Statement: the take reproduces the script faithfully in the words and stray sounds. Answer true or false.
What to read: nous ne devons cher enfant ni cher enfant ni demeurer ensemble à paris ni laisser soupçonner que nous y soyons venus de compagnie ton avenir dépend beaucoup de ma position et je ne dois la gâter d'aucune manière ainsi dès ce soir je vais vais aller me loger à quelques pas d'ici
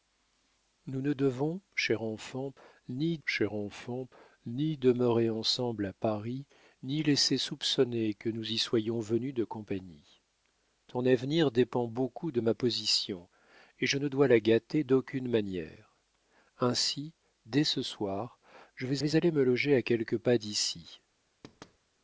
false